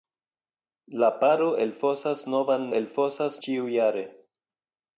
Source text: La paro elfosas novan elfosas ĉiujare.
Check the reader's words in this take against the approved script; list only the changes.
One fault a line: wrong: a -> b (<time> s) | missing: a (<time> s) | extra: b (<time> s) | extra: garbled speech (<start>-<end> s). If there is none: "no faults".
no faults